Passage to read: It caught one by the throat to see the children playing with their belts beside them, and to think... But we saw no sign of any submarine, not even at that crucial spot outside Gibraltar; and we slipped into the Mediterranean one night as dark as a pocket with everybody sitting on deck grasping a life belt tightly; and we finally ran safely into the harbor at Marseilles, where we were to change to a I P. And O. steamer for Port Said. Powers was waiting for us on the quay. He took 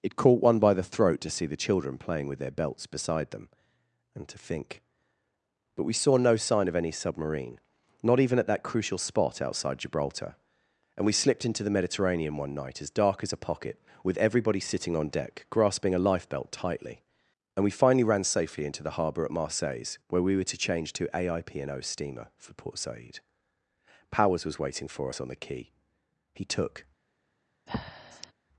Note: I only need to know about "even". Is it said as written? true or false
true